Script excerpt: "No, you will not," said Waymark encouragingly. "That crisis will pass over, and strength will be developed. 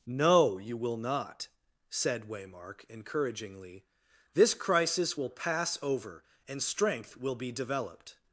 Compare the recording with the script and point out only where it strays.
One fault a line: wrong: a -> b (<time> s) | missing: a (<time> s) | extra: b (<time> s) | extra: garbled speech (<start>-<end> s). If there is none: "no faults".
wrong: That -> This (4.3 s)